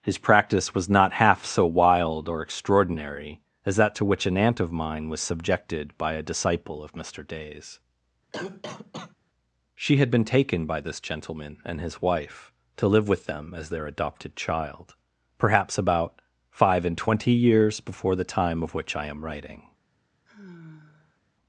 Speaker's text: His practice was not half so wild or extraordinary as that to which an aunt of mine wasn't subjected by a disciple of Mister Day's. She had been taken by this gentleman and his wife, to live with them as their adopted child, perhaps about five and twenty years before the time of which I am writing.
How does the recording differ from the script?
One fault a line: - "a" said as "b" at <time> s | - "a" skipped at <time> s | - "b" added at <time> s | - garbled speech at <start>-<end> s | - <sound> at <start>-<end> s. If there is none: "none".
- "wasn't" said as "was" at 5.1 s
- cough at 8.3-9.2 s
- sigh at 20.3-21.2 s